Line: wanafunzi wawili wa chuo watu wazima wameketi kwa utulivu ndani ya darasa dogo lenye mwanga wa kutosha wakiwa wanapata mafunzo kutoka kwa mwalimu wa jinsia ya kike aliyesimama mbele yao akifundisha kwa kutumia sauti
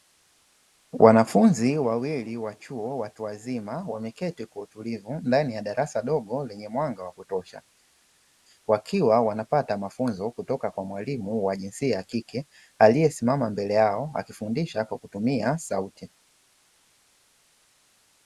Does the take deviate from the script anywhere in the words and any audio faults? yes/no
no